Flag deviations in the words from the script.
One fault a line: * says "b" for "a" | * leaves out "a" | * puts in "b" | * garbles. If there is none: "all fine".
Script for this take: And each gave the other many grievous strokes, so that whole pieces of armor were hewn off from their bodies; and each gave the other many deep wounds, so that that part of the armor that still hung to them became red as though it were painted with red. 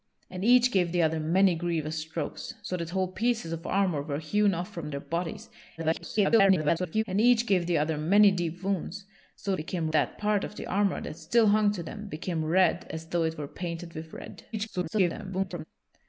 * garbles
* says "became" for "that"
* garbles